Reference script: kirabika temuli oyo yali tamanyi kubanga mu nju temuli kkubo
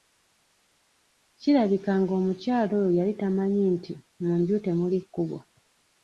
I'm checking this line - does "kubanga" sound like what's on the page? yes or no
no